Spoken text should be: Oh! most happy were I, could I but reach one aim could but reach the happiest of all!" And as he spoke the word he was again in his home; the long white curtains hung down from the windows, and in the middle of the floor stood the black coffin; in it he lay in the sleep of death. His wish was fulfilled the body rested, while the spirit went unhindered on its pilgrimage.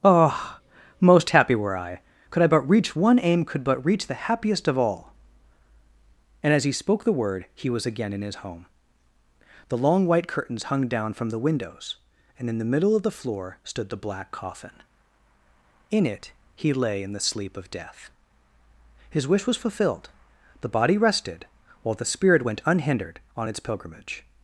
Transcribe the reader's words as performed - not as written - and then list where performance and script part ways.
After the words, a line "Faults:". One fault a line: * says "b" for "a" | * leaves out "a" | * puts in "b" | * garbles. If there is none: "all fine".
Oh! most happy were I, could I but reach one aim could but reach the happiest of all!" And as he spoke the word he was again in his home; the long white curtains hung down from the windows, and in the middle of the floor stood the black coffin; in it he lay in the sleep of death. His wish was fulfilled the body rested, while the spirit went unhindered on its pilgrimage.
Faults:
all fine